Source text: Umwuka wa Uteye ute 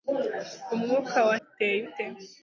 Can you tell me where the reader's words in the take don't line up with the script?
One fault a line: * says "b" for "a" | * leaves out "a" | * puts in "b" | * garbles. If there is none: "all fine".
all fine